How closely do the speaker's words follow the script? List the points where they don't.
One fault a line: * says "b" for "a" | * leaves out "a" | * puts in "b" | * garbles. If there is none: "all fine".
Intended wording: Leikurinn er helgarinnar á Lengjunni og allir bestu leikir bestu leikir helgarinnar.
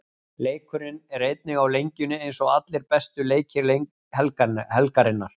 * says "einnig" for "helgarinnar"
* puts in "eins"
* leaves out "bestu leikir"